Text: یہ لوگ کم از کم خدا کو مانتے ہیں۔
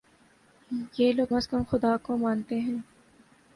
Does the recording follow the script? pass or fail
fail